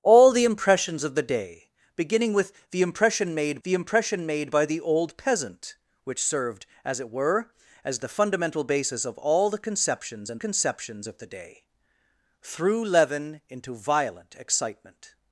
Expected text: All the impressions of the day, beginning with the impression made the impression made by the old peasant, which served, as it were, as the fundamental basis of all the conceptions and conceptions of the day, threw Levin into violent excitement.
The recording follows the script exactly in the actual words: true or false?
true